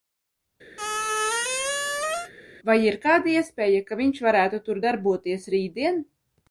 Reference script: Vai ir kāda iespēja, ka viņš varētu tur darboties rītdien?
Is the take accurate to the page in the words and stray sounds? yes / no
no